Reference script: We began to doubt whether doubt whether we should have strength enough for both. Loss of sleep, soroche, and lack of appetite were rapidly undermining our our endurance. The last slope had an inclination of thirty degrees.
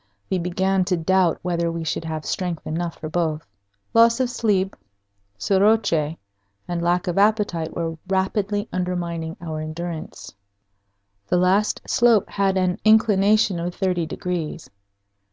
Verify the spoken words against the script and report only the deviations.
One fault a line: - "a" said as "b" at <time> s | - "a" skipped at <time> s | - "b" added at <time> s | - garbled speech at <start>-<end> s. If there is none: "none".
- "doubt whether" skipped at 1.7 s
- "our" skipped at 9.6 s